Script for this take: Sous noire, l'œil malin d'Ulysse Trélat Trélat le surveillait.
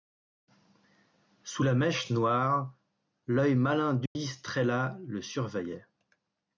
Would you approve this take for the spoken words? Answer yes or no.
no